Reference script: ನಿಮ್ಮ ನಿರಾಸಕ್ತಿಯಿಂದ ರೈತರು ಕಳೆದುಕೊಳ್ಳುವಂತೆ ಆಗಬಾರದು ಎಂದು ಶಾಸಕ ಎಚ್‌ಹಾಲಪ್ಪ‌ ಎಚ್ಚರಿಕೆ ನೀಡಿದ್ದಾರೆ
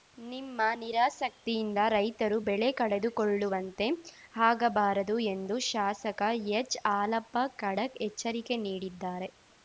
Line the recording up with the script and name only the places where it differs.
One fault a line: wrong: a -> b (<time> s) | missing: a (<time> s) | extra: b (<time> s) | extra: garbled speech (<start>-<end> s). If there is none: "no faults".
extra: ಬೆಳೆ (2.4 s)
extra: ಖಡಕ್ (7.6 s)